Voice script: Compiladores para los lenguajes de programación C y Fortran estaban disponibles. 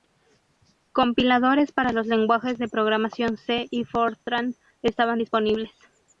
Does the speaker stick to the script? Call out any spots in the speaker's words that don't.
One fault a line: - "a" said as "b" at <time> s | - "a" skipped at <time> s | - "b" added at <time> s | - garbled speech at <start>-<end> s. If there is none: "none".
none